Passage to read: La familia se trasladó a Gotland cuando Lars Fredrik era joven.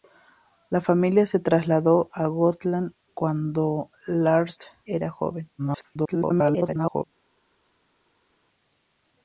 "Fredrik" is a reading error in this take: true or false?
true